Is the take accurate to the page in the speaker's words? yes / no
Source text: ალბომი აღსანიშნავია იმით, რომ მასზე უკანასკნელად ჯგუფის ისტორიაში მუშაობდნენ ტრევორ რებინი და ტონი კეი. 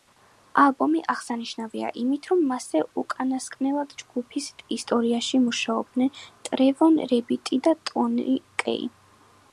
yes